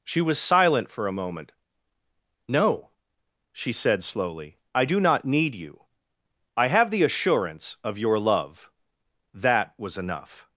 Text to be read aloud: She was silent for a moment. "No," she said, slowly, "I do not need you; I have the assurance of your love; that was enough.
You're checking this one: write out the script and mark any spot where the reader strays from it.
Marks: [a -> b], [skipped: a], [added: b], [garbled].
She was silent for a moment. "No," she said, slowly, "I do not need you; I have the assurance of your love; that was enough.